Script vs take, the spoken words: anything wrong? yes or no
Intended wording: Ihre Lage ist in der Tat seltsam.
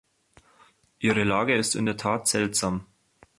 no